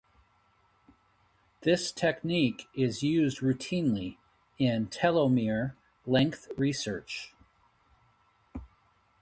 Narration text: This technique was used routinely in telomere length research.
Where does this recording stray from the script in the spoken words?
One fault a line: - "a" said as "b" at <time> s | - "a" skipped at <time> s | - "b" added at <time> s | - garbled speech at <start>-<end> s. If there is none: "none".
- "was" said as "is" at 2.7 s